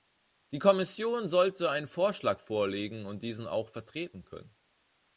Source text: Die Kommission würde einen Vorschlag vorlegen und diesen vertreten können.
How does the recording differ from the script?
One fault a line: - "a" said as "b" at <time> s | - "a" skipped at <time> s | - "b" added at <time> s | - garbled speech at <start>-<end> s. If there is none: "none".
- "würde" said as "sollte" at 1.3 s
- "auch" added at 3.5 s